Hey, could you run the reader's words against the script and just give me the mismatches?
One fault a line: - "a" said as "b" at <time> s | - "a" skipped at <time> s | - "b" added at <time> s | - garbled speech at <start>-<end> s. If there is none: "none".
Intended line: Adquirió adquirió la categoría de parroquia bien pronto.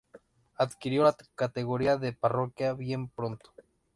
- "adquirió" skipped at 1.1 s